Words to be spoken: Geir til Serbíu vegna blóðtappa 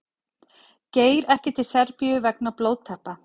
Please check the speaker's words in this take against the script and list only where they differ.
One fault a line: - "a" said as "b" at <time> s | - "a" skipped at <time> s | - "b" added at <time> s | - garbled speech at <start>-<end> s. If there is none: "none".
- "ekki" added at 1.3 s